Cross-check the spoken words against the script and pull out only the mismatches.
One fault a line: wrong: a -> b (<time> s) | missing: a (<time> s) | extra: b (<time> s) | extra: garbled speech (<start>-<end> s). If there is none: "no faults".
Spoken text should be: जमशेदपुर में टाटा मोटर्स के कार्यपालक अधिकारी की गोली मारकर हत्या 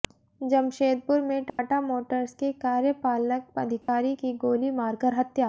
no faults